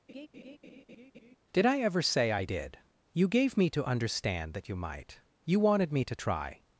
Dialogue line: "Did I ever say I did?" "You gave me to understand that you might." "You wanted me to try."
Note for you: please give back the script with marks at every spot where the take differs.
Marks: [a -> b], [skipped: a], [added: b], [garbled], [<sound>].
[laugh] "Did I ever say I did?" "You gave me to understand that you might." "You wanted me to try."